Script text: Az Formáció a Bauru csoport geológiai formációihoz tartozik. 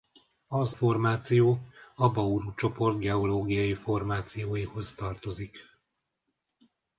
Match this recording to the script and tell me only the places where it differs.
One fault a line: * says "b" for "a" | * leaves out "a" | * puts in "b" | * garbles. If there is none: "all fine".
all fine